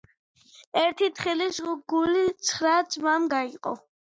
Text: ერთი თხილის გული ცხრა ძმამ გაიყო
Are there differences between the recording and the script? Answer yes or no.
no